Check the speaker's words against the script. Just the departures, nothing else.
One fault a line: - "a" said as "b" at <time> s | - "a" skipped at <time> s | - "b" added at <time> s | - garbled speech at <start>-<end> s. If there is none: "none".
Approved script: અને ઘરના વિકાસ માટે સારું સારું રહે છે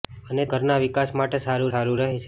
none